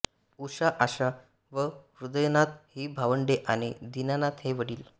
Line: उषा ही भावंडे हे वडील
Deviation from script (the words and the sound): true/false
true